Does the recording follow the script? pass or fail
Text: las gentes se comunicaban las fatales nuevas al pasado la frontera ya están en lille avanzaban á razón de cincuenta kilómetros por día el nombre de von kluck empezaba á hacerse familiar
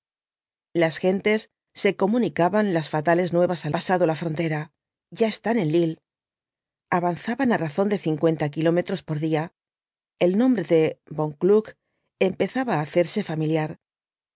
pass